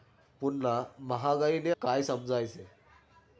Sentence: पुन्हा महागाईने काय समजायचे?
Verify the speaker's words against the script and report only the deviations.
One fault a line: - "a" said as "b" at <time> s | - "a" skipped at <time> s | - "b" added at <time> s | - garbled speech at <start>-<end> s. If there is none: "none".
none